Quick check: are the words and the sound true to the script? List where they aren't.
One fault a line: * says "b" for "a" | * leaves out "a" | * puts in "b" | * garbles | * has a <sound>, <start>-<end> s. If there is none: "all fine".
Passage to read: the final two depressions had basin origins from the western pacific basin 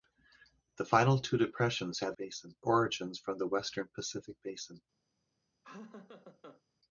* has a laugh, 5.6-6.6 s